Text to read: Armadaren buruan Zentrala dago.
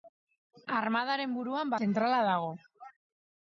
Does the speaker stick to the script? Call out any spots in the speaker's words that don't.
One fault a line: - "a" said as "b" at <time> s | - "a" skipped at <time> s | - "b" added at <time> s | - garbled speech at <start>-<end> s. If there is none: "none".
none